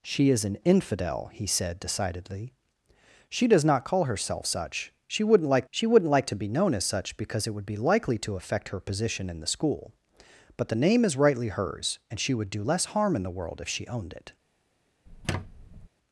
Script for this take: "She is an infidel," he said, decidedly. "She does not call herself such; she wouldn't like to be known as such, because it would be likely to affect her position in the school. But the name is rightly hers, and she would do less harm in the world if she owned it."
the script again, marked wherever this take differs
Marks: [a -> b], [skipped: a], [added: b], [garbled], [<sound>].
"She is an infidel," he said, decidedly. "She does not call herself such; she wouldn't like [added: she wouldn't like] to be known as such, because it would be likely to affect her position in the school. But the name is rightly hers, and she would do less harm in the world if she owned it." [squeak]